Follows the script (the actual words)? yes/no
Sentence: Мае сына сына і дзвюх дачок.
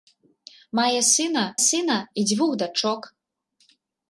yes